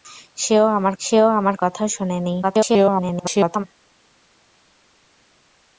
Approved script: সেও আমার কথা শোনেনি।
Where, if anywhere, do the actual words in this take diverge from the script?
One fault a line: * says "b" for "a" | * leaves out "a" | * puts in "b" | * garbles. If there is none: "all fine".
* puts in "সেও আমার"
* garbles